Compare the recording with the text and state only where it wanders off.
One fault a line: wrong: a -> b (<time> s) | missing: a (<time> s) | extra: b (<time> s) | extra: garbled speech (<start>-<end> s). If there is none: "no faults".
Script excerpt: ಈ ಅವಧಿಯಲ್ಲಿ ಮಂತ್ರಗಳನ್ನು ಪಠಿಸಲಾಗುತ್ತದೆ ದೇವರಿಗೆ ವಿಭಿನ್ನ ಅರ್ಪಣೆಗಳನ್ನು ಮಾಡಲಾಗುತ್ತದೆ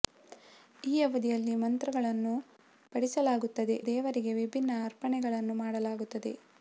no faults